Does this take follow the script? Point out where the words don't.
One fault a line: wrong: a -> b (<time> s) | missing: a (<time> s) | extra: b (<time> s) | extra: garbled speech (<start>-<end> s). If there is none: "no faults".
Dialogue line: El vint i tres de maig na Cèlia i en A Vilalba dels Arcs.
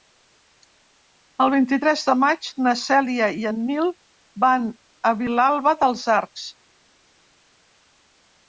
extra: Nil van (3.7 s)